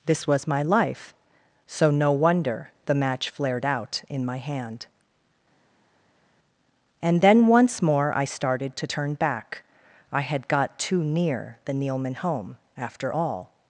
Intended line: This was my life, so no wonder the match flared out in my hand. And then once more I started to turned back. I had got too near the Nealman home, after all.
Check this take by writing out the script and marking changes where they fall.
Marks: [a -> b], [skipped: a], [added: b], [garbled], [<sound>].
This was my life, so no wonder the match flared out in my hand. And then once more I started to [turned -> turn] back. I had got too near the Nealman home, after all.